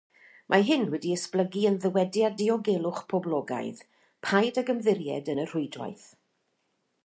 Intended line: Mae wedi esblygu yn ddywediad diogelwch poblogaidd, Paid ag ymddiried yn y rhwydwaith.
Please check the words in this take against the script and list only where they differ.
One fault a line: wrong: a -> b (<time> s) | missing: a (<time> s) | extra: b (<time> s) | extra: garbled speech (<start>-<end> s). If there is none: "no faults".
extra: hyn (0.7 s)